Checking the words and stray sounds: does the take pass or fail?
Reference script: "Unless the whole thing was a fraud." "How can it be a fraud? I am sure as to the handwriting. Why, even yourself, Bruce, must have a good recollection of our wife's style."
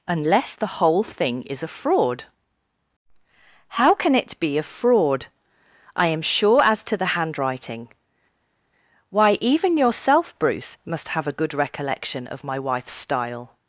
fail